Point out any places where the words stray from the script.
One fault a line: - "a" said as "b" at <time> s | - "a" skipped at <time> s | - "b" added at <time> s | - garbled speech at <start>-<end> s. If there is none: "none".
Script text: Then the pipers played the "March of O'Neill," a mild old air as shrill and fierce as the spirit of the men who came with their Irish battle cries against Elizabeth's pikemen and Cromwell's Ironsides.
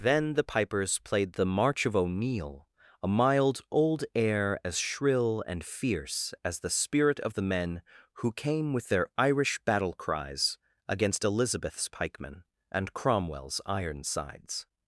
none